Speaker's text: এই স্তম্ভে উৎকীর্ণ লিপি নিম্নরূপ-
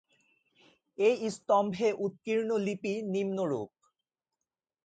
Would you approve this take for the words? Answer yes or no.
yes